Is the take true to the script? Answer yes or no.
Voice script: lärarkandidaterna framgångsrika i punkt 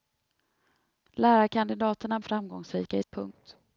yes